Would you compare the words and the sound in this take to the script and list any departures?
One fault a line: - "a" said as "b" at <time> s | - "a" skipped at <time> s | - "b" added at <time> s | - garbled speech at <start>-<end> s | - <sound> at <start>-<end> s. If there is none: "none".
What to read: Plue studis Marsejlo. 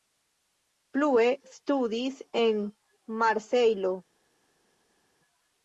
- "en" added at 2.4 s